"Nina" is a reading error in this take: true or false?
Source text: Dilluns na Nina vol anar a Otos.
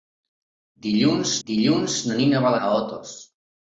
false